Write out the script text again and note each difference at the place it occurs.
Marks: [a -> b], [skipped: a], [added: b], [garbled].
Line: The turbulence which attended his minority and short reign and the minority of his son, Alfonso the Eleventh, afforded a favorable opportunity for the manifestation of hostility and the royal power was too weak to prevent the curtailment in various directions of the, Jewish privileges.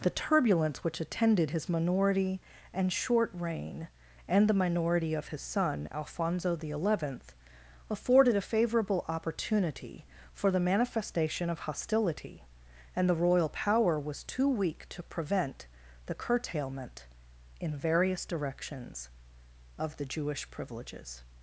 The turbulence which attended his minority and short reign and the minority of his son, Alfonso the Eleventh, afforded a favorable opportunity for the manifestation of hostility and the royal power was too weak to prevent the curtailment in various directions of the, Jewish privileges.